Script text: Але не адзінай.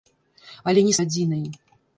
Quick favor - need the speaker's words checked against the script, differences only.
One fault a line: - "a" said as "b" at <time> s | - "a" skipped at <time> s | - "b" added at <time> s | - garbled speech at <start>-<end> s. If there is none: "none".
none